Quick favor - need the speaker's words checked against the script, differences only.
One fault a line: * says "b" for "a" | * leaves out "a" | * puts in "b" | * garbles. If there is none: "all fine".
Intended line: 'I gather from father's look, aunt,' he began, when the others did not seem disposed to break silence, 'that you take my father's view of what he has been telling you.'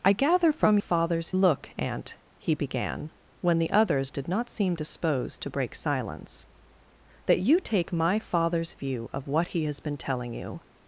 all fine